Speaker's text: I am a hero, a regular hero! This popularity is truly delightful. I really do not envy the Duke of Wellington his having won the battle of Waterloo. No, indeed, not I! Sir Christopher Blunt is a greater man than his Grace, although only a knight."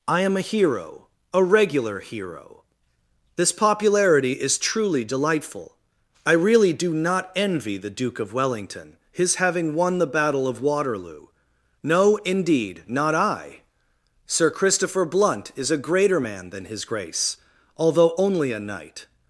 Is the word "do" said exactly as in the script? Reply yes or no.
yes